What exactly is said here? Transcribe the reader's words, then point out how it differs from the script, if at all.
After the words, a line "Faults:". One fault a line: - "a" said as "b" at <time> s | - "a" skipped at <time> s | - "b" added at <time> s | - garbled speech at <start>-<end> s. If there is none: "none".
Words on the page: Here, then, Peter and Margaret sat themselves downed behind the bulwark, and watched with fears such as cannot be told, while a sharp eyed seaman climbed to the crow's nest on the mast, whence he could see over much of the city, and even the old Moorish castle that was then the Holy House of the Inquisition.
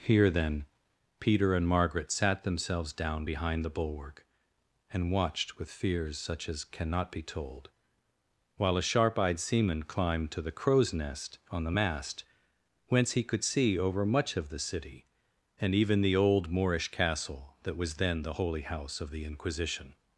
Here, then, Peter and Margaret sat themselves down behind the bulwark, and watched with fears such as cannot be told, while a sharp eyed seaman climbed to the crow's nest on the mast, whence he could see over much of the city, and even the old Moorish castle that was then the Holy House of the Inquisition.
Faults:
- "downed" said as "down" at 2.9 s